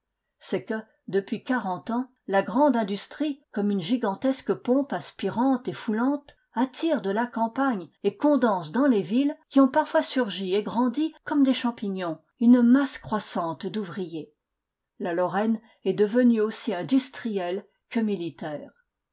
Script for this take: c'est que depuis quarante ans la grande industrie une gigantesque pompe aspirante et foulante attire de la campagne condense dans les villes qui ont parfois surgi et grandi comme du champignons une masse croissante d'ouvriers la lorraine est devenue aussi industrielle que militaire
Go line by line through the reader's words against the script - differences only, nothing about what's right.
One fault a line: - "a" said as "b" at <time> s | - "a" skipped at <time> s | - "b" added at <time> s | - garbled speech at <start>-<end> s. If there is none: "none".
- "comme" added at 3.5 s
- "et" added at 8.0 s
- "du" said as "des" at 11.4 s